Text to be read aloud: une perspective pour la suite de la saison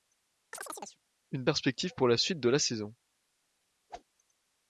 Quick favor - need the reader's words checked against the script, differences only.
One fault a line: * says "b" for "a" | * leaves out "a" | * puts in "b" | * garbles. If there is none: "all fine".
all fine